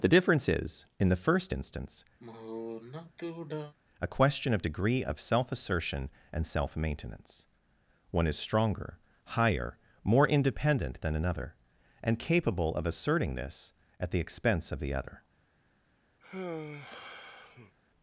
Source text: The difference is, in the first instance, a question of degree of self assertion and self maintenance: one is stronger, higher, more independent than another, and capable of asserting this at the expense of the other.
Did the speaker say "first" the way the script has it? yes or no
yes